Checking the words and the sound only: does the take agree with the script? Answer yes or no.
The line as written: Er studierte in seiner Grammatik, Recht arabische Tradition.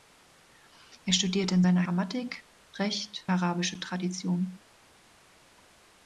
yes